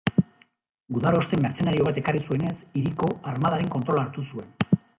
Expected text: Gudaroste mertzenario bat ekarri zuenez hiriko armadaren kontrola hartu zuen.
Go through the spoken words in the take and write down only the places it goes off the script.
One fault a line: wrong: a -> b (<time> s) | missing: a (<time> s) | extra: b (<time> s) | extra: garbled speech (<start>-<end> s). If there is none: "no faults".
no faults